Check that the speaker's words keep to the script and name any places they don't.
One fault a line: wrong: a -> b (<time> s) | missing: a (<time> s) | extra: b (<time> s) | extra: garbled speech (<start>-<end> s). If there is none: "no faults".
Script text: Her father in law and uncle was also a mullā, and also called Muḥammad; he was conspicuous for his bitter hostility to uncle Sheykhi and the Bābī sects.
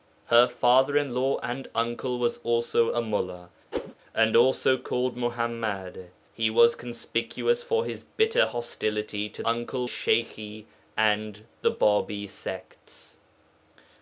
no faults